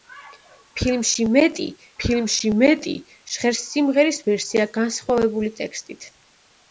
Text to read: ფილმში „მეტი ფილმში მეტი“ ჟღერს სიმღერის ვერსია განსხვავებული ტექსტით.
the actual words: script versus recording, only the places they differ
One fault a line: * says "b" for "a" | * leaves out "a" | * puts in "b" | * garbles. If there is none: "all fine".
all fine